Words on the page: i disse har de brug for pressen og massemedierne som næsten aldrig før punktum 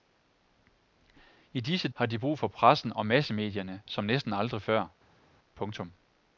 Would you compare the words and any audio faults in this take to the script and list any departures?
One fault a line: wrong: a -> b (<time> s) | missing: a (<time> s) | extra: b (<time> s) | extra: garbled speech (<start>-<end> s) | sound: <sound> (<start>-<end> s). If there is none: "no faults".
no faults